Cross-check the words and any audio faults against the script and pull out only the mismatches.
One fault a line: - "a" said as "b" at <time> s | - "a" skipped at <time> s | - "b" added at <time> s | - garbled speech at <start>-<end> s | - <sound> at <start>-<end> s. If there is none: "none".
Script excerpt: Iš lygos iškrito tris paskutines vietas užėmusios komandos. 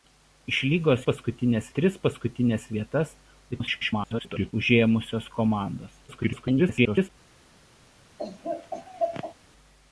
- "iškrito" said as "paskutines" at 1.1 s
- garbled speech at 3.5-4.5 s
- garbled speech at 6.1-7.1 s
- laugh at 8.2-9.3 s